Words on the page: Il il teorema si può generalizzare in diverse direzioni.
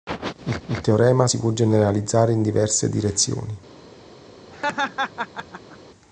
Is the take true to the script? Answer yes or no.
yes